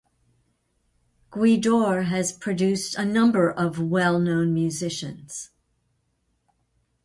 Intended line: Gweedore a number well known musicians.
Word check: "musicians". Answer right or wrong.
right